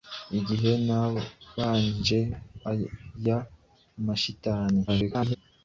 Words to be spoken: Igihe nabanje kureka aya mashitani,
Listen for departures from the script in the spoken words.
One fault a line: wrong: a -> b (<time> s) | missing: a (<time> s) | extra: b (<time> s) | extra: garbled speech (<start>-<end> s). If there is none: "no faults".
missing: kureka (2.2 s)
extra: garbled speech (4.9-5.4 s)